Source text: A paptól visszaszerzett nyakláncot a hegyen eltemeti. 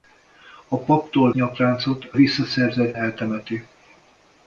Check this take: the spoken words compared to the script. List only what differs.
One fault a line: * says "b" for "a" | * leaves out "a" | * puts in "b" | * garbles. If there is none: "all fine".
* leaves out "visszaszerzett"
* says "visszaszerzett" for "hegyen"